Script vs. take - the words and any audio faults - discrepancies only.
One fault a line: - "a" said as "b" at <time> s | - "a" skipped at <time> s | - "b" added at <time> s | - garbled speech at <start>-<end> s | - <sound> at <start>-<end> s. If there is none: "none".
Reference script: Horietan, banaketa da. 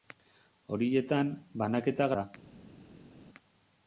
none